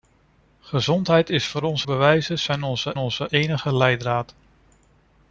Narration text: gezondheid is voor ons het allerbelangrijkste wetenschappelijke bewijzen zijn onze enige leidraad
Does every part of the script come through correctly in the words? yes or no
no